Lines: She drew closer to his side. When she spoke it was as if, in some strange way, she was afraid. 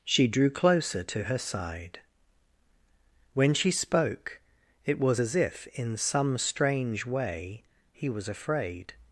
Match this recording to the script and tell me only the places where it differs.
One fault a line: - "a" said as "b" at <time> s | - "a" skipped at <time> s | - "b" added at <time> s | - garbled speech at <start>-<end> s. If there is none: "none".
- "his" said as "her" at 1.2 s
- "she" said as "he" at 7.9 s